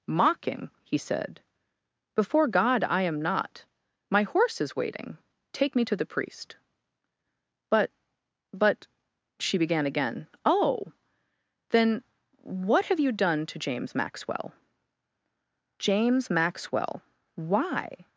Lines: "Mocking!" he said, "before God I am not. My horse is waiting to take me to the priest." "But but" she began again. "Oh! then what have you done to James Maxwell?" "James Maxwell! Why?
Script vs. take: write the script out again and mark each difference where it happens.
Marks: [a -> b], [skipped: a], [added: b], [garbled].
"Mocking!" he said, "before God I am not. My horse is waiting [skipped: to] take me to the priest." "But but" she began again. "Oh! then what have you done to James Maxwell?" "James Maxwell! Why?